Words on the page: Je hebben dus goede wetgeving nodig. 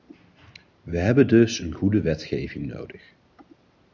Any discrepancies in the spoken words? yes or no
yes